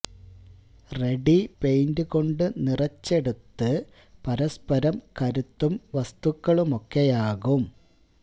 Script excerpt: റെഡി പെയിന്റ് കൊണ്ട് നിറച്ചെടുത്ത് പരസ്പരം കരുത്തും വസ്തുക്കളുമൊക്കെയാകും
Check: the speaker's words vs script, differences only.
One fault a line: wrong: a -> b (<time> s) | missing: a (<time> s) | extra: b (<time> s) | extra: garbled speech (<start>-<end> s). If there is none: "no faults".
no faults